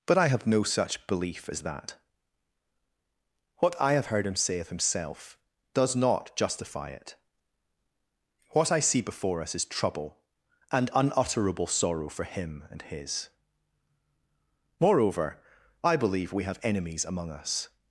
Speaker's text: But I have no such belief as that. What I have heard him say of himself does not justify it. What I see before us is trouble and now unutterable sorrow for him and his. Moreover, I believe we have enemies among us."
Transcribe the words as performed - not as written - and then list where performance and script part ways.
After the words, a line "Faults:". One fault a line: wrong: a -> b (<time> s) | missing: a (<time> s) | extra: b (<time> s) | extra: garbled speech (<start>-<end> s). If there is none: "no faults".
But I have no such belief as that. What I have heard him say of himself does not justify it. What I see before us is trouble and unutterable sorrow for him and his. Moreover, I believe we have enemies among us."
Faults:
missing: now (10.9 s)